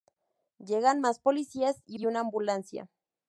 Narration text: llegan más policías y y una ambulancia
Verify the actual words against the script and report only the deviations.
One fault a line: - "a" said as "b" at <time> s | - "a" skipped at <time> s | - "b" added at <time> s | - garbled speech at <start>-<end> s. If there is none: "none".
none